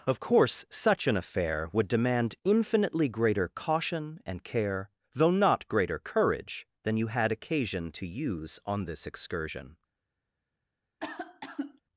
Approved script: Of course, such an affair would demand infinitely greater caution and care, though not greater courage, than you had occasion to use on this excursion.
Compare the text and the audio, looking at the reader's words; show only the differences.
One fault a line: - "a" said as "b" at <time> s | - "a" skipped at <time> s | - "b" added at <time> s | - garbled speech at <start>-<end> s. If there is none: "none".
none